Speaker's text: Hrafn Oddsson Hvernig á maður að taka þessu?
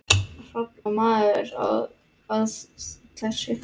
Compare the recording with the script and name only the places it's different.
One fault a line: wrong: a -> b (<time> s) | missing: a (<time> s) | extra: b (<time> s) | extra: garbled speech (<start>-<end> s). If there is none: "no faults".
missing: Oddsson Hvernig (0.8 s)
missing: taka (2.6 s)